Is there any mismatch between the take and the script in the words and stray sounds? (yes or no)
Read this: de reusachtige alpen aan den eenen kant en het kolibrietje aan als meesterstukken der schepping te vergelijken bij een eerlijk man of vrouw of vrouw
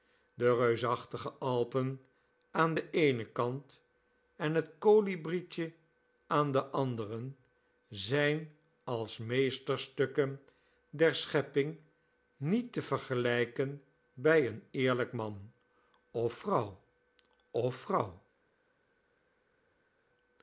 yes